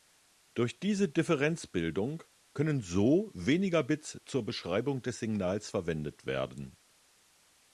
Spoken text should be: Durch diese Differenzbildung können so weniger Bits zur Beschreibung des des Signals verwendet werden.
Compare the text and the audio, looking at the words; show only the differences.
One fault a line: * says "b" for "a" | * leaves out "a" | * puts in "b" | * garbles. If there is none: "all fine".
* leaves out "des"